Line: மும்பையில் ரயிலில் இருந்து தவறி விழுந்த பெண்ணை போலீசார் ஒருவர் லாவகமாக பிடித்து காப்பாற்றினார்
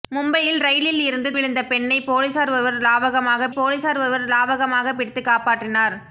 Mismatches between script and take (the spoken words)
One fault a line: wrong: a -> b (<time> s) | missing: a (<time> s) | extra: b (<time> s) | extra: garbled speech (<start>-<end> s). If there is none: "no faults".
missing: தவறி (1.3 s)
extra: போலீசார் ஒருவர் லாவகமாக (3.5 s)